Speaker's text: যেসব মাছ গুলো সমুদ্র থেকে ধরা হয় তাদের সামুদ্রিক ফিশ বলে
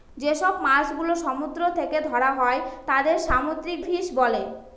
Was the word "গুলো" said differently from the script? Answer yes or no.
no